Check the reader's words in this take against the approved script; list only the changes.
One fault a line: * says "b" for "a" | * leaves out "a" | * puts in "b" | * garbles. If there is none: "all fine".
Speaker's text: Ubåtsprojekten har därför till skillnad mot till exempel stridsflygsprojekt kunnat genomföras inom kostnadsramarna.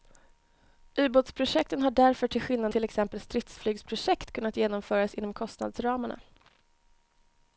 * leaves out "mot"